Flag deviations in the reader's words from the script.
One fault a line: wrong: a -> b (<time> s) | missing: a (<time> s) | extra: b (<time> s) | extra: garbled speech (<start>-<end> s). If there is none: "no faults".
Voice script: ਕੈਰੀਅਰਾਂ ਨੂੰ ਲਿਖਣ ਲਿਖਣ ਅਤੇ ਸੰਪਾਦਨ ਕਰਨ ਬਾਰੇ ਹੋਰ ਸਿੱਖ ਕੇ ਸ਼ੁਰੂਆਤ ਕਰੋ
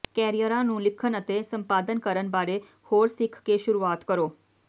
missing: ਲਿਖਣ (1.2 s)